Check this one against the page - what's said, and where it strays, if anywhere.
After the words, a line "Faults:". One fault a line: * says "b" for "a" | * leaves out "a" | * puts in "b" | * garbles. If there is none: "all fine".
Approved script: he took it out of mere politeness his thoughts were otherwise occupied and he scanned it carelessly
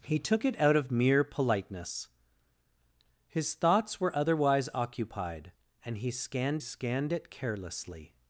he took it out of mere politeness his thoughts were otherwise occupied and he scanned scanned it carelessly
Faults:
* puts in "scanned"